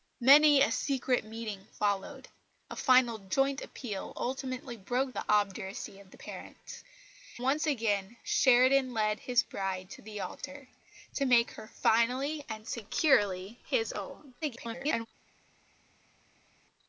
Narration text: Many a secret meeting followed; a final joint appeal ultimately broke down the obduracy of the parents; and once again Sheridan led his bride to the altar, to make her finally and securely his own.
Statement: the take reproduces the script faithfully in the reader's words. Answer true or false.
false